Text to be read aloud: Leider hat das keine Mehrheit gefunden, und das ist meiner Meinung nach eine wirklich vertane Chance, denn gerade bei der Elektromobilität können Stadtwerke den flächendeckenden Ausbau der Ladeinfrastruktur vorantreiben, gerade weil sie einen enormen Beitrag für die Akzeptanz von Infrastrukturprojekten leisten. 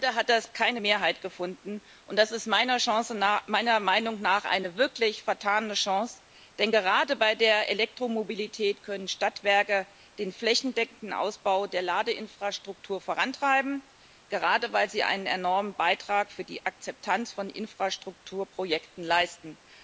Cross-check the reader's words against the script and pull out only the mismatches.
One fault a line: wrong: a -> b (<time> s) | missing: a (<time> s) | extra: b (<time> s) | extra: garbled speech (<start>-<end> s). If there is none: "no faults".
no faults